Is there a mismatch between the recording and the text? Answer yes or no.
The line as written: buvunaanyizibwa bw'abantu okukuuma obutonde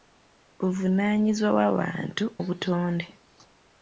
yes